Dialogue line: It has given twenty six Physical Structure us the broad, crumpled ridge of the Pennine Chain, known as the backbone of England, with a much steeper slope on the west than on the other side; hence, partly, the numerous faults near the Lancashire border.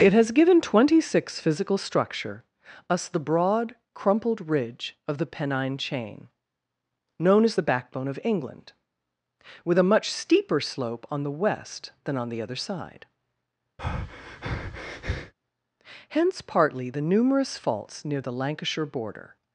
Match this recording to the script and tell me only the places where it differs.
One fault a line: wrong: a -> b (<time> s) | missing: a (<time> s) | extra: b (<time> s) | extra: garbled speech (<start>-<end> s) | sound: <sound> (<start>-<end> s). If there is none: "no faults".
sound: breath (13.8-15.3 s)